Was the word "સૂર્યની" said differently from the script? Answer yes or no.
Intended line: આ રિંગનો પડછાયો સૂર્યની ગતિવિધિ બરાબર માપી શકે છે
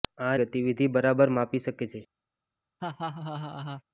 yes